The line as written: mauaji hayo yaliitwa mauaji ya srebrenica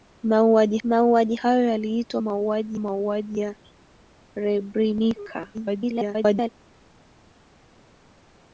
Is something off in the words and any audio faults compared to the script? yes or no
yes